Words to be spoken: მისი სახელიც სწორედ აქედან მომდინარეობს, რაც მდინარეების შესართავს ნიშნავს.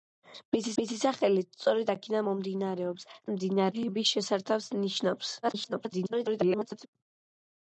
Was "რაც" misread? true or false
true